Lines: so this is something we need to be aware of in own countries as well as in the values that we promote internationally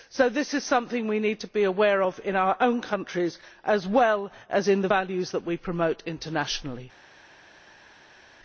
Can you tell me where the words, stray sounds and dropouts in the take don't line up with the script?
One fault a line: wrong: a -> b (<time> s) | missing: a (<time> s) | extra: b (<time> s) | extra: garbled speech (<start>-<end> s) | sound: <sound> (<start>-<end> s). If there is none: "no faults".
extra: our (2.4 s)